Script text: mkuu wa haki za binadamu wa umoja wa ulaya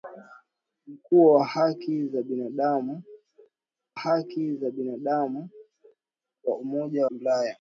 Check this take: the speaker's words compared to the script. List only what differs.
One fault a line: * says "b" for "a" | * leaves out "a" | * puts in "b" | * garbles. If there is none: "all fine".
* puts in "haki za binadamu"
* leaves out "wa"